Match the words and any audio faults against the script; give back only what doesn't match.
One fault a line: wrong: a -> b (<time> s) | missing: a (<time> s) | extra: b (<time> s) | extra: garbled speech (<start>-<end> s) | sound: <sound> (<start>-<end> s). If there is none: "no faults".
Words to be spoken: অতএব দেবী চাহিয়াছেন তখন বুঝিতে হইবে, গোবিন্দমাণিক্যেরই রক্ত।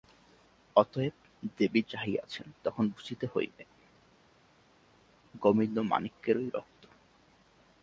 no faults